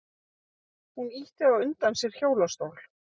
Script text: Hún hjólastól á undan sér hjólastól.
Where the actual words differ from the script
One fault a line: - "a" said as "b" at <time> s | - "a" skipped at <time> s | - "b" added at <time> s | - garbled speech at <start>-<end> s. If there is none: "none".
- "hjólastól" said as "ýtti" at 1.2 s